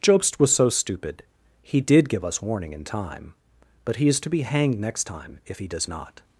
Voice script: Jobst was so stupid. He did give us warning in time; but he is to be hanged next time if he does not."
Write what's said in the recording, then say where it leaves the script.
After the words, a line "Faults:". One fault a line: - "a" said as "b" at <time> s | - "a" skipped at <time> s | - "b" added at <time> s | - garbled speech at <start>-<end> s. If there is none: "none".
Jobst was so stupid. He did give us warning in time; but he is to be hanged next time if he does not."
Faults:
none